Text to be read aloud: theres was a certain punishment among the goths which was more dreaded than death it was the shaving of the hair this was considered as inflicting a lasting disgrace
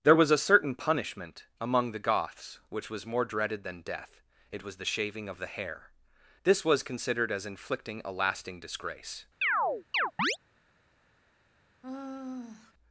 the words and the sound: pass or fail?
fail